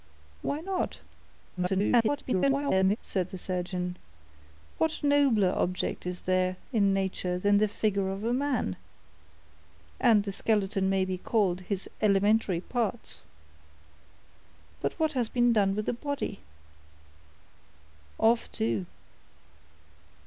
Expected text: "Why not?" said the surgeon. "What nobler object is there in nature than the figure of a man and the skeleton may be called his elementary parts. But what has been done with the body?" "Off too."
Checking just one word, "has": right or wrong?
right